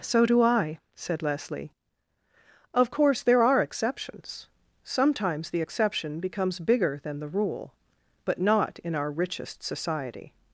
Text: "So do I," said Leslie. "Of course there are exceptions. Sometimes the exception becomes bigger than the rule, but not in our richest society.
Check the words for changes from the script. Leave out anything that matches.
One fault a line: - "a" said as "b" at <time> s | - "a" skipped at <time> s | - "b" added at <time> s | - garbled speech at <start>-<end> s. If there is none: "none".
none